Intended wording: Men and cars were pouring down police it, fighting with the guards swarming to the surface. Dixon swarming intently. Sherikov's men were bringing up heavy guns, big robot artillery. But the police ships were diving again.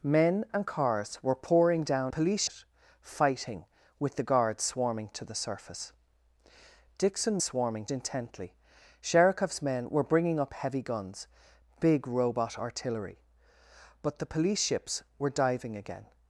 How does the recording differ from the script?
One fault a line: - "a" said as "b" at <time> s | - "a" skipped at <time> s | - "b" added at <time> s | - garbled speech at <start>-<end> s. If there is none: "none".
none